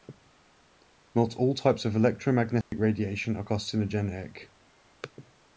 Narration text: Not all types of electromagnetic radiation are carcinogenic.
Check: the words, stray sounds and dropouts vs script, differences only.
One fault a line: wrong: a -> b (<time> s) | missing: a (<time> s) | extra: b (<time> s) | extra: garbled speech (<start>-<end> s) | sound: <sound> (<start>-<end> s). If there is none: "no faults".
sound: dropout (2.6-2.7 s)